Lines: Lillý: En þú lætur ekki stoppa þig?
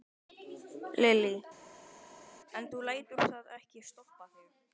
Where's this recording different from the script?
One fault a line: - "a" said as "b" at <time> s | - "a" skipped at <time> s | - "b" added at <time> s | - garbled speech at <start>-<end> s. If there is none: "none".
- "það" added at 3.3 s